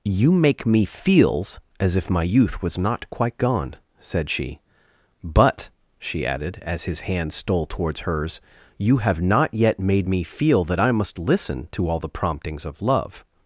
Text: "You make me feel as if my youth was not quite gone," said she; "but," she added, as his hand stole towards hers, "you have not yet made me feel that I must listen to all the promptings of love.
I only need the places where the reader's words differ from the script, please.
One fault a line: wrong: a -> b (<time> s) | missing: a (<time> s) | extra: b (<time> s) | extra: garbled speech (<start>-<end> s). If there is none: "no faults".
wrong: feel -> feels (0.8 s)